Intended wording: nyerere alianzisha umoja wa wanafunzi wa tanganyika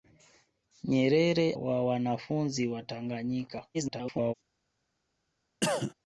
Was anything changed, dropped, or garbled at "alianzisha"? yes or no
yes